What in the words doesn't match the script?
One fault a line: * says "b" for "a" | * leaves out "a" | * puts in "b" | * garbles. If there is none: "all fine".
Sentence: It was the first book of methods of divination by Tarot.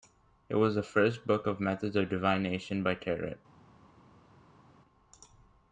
all fine